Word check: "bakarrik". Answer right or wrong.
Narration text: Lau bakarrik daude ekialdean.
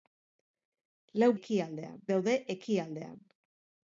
wrong